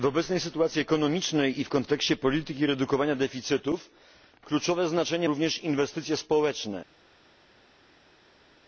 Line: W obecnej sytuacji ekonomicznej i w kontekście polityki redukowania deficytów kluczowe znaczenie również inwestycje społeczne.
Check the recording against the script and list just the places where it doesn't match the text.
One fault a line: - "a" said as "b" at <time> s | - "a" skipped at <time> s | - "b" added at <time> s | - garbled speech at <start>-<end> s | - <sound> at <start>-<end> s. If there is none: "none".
none